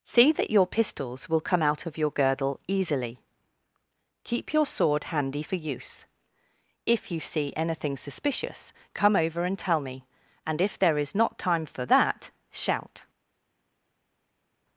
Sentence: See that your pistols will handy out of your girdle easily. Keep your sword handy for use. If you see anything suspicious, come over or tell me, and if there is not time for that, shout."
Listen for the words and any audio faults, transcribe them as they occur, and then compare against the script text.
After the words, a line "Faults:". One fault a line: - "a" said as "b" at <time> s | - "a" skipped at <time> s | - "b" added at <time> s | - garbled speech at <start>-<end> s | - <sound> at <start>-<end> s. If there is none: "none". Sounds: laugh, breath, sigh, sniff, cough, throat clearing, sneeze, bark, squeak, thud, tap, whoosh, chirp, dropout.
See that your pistols will come out of your girdle easily. Keep your sword handy for use. If you see anything suspicious, come over and tell me, and if there is not time for that, shout."
Faults:
- "handy" said as "come" at 1.4 s
- "or" said as "and" at 9.4 s